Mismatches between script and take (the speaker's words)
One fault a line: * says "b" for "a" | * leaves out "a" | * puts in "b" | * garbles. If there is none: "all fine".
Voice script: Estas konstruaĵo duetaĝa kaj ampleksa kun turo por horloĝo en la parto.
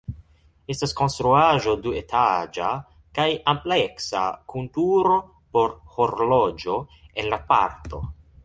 all fine